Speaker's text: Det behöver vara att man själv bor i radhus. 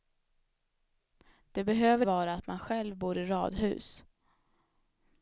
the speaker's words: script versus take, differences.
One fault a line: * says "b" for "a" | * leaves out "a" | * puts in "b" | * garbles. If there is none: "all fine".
all fine